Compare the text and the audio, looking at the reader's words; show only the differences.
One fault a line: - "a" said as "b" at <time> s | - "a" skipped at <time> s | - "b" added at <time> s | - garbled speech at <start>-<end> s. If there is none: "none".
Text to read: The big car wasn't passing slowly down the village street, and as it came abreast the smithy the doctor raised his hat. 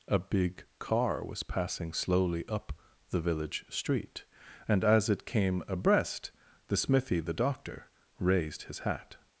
- "The" said as "A" at 0.1 s
- "wasn't" said as "was" at 1.2 s
- "down" said as "up" at 2.5 s